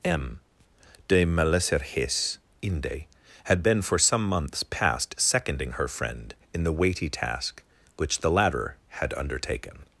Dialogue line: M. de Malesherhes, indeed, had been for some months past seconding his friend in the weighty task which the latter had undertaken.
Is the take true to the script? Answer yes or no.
no